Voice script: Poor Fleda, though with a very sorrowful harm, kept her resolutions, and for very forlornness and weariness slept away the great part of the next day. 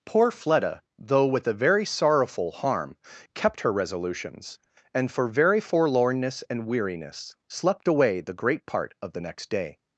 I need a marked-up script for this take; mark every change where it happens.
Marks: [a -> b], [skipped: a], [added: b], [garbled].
Poor Fleda, though with a very sorrowful harm, kept her resolutions, and for very forlornness and weariness slept away the great part of the next day.